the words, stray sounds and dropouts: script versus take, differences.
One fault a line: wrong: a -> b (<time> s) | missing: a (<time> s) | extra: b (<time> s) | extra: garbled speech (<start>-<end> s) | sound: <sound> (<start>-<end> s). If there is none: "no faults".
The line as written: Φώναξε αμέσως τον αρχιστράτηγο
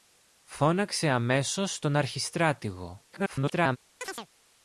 extra: garbled speech (3.1-3.8 s)
sound: chirp (4.0-4.3 s)